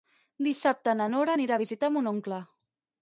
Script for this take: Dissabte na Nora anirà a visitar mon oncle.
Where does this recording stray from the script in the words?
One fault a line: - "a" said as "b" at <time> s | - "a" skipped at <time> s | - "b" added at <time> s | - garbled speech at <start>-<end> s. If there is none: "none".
none